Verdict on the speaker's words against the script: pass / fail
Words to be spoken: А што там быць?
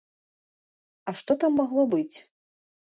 fail